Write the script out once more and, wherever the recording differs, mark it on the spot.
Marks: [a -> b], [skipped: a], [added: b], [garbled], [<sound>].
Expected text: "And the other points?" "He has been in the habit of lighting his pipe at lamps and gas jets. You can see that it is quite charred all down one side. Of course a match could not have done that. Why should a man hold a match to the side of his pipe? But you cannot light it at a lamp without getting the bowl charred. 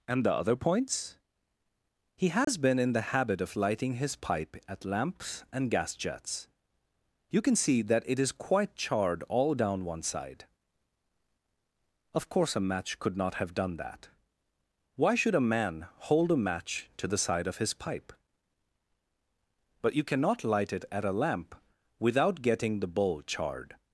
"And the other points?" "He has [dropout] been in the habit of lighting his pipe at lamps and gas jets. You can see that it is quite charred all down one side. Of course a match could not have done that. Why should a man hold a match to the side of his pipe? But you cannot light it at a lamp without getting the bowl charred.